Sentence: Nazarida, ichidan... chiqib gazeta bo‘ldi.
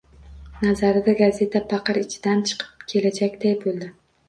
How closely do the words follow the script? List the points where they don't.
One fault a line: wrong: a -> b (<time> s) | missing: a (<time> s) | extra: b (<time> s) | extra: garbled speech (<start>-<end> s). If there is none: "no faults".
extra: gazeta paqir (1.2 s)
wrong: gazeta -> kelajakday (3.0 s)